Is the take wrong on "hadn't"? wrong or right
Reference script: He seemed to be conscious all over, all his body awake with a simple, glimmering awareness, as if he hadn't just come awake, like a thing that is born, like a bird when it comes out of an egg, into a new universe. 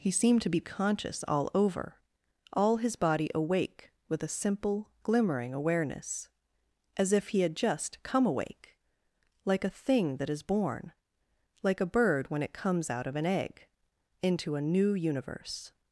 wrong